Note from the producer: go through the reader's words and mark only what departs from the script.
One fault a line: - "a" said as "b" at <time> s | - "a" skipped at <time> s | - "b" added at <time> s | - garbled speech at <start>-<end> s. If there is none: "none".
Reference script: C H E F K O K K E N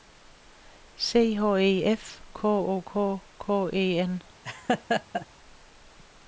none